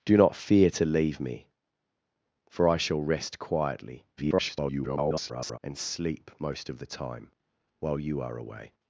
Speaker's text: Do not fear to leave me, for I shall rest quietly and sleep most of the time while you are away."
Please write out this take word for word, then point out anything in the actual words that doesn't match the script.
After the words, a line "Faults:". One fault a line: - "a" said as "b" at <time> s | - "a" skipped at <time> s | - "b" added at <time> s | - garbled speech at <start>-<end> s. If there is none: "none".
Do not fear to leave me, for I shall rest quietly [garbled] and sleep most of the time while you are away."
Faults:
- garbled speech at 4.2-5.6 s